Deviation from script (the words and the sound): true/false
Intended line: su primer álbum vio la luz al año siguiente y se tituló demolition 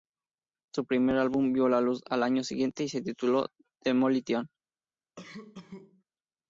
true